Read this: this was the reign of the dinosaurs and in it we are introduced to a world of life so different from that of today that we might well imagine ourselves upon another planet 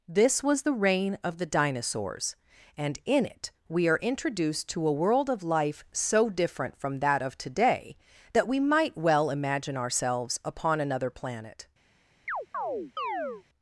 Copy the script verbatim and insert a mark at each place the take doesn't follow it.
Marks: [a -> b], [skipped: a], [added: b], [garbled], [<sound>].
this was the reign of the dinosaurs and in it we are introduced to a world of life so different from that of today that we might well imagine ourselves upon another planet [chirp]